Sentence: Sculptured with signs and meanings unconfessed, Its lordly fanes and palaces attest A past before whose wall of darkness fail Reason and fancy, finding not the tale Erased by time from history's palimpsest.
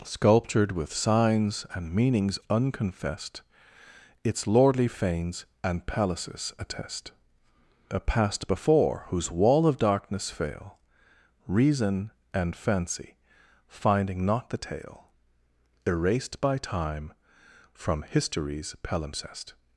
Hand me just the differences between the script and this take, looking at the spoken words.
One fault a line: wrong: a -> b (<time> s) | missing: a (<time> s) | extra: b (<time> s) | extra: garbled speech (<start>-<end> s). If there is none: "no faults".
no faults